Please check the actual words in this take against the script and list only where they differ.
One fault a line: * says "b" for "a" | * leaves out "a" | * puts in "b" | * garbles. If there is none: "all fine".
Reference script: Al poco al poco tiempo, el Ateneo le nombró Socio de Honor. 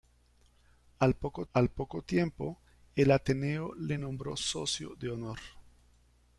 all fine